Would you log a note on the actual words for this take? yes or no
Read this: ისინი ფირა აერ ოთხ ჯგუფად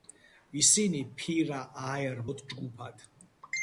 no